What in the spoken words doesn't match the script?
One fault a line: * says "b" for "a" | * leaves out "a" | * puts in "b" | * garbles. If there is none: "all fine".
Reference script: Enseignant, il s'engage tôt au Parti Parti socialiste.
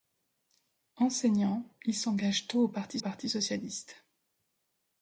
all fine